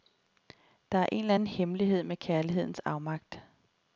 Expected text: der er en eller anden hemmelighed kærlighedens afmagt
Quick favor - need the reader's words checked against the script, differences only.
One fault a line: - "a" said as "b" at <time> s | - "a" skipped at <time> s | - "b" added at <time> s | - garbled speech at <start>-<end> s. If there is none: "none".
- "med" added at 2.0 s